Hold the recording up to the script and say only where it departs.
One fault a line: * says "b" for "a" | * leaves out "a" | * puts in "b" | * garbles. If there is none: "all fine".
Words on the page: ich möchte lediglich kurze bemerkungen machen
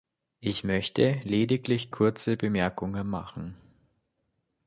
all fine